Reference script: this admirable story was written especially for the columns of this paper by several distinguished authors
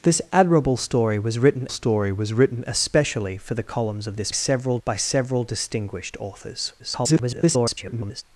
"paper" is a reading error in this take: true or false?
true